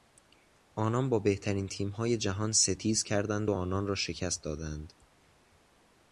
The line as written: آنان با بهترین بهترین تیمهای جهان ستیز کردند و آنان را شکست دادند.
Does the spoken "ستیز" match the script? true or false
true